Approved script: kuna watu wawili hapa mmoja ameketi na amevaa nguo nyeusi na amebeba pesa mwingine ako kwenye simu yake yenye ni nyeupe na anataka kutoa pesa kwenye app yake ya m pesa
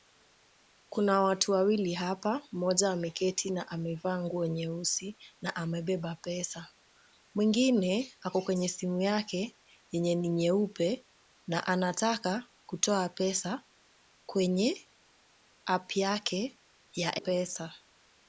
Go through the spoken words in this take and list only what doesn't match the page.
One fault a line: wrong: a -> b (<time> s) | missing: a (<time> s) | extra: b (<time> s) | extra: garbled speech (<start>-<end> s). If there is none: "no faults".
missing: m (17.2 s)